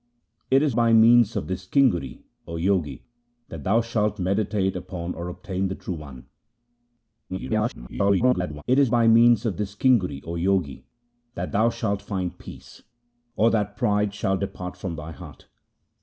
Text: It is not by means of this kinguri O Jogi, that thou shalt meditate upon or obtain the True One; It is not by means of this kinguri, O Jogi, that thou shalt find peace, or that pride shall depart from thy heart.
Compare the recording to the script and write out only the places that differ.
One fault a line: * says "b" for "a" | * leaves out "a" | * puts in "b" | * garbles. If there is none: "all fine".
* leaves out "not"
* garbles
* leaves out "not"